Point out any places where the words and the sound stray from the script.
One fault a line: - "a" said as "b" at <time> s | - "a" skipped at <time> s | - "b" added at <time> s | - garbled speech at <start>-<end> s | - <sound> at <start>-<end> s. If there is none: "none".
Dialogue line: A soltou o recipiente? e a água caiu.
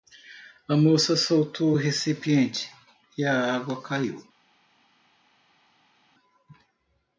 - "moça" added at 0.8 s